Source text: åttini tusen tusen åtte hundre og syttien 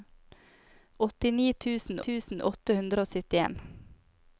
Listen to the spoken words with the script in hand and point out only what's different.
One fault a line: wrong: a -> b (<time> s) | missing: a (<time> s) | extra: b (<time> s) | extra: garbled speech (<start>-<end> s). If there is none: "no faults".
no faults